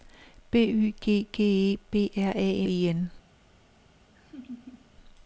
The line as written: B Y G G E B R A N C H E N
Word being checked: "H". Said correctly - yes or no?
no